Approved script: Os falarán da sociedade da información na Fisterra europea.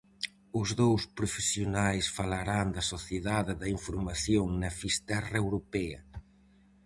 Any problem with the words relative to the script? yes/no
yes